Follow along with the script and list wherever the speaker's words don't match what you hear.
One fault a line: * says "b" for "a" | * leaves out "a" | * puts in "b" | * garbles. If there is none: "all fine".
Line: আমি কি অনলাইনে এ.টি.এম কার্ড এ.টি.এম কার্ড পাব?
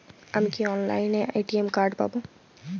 * leaves out "এ.টি.এম কার্ড"